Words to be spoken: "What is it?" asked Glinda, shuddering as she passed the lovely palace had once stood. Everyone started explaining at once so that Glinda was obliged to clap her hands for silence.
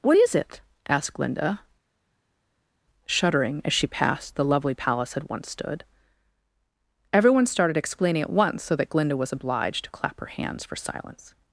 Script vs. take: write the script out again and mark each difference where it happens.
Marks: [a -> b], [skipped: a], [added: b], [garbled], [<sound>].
"What is it?" asked Glinda, shuddering as she passed the lovely palace had once stood. Everyone started explaining at once so that Glinda was obliged to clap her hands for silence.